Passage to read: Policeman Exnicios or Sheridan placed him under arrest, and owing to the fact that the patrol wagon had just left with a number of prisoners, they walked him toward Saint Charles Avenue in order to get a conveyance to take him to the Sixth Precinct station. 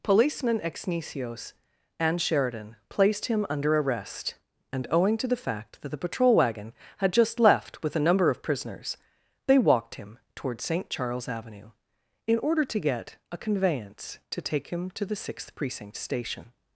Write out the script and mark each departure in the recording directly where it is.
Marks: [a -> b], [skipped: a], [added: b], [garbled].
Policeman Exnicios [or -> and] Sheridan placed him under arrest, and owing to the fact that the patrol wagon had just left with a number of prisoners, they walked him toward Saint Charles Avenue in order to get a conveyance to take him to the Sixth Precinct station.